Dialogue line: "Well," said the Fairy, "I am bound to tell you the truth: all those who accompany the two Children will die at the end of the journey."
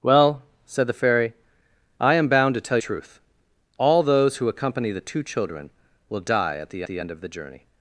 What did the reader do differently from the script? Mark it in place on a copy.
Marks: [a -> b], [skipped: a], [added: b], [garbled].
"Well," said the Fairy, "I am bound to tell [skipped: you the] truth: all those who accompany the two Children will die at the [added: the] end of the journey."